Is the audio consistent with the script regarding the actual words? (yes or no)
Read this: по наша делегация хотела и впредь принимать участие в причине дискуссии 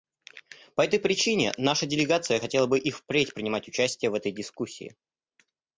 no